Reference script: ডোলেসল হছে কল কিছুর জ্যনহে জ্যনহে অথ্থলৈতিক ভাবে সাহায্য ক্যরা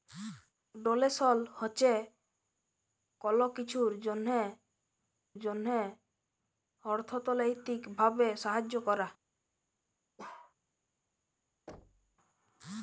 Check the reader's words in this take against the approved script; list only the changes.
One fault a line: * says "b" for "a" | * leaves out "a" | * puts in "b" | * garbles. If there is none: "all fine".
all fine